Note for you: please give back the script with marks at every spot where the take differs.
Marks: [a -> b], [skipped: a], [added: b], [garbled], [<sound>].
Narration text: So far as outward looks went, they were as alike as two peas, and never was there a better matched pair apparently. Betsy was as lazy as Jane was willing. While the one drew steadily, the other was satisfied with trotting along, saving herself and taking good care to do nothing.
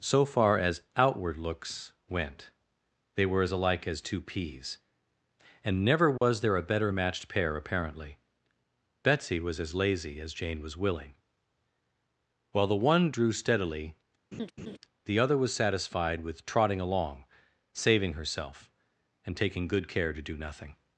So far as outward looks went, they were as alike as two peas, and never was [dropout] there a better matched pair apparently. Betsy was as lazy as Jane was willing. While the one drew steadily, [laugh] the other was satisfied with trotting along, saving herself and taking good care to do nothing.